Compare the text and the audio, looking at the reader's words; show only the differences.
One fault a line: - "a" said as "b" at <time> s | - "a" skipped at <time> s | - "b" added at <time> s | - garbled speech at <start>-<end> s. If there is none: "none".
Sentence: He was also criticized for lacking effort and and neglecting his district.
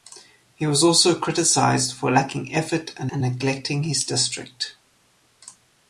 none